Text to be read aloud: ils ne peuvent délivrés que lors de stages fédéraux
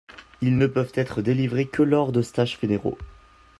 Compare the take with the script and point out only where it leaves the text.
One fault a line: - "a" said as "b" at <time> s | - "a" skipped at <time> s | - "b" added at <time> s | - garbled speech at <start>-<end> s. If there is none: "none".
- "être" added at 0.9 s